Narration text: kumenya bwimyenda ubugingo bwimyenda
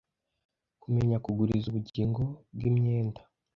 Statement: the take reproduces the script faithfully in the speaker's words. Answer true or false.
false